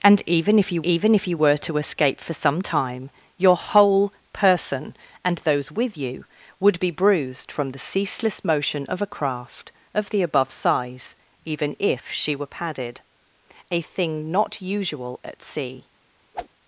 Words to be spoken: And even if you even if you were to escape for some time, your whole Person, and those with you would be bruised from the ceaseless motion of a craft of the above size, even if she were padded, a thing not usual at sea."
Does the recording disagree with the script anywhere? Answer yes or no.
no